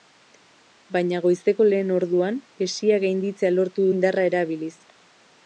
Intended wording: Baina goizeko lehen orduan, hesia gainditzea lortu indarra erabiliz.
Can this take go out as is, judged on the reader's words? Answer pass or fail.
pass